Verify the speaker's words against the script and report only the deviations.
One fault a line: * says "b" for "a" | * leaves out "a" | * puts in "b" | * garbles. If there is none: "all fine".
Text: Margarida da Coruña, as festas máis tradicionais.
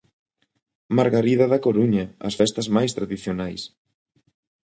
all fine